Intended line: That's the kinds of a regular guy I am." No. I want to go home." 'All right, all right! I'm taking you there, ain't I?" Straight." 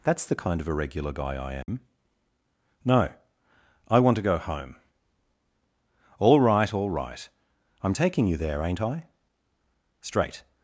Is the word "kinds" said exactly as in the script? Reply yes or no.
no